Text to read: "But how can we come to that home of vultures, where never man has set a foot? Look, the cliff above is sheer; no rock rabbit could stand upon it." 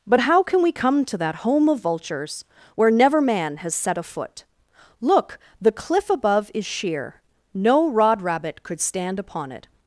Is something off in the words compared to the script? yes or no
yes